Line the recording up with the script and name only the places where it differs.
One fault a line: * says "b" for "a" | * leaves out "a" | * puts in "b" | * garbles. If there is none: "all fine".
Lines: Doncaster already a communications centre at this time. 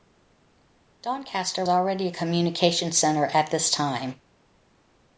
all fine